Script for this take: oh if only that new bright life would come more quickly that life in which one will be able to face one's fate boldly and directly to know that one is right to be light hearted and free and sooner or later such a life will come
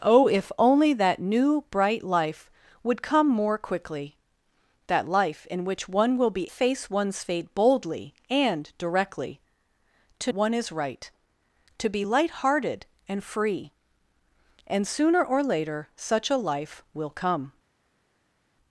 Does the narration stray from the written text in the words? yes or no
yes